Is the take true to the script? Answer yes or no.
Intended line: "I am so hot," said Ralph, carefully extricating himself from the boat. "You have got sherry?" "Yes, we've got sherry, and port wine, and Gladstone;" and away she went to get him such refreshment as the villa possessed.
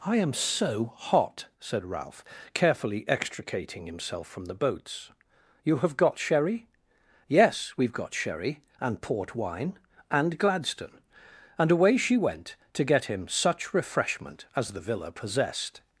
no